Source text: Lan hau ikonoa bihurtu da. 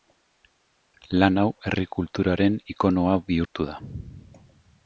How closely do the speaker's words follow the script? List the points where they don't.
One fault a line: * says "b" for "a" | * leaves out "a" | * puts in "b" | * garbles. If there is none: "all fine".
* puts in "herri kulturaren"